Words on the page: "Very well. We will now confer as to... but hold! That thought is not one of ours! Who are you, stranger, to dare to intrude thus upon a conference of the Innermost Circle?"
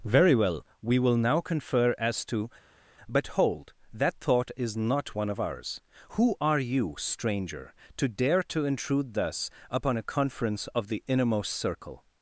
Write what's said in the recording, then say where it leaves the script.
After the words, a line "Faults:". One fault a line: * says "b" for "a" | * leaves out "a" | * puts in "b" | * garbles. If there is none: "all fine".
"Very well. We will now confer as to... but hold! That thought is not one of ours! Who are you, stranger, to dare to intrude thus upon a conference of the Innermost Circle?"
Faults:
all fine